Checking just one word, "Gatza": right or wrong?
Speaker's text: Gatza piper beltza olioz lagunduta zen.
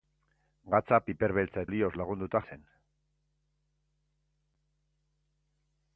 right